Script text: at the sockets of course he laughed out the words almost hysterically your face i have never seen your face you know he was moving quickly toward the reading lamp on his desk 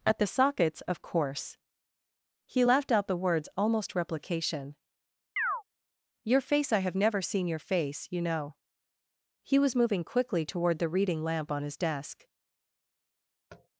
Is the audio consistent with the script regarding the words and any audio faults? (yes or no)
no